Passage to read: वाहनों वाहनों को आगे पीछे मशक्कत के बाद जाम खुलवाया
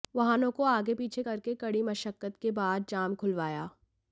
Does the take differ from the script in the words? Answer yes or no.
yes